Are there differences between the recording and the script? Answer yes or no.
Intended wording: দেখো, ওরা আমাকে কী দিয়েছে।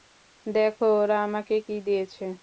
no